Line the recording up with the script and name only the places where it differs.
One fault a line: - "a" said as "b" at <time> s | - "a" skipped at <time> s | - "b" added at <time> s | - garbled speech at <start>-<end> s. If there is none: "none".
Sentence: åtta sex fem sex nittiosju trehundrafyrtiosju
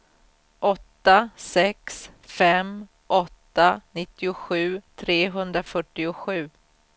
- "sex" said as "åtta" at 3.1 s